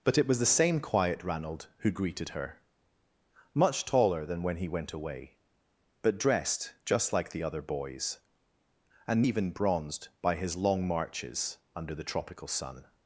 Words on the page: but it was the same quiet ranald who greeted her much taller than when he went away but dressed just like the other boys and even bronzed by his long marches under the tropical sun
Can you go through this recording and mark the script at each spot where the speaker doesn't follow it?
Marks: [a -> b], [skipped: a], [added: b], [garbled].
but it was the same quiet ranald who greeted her much taller than when he went away but dressed just like the other boys and even bronzed by his long marches under the tropical sun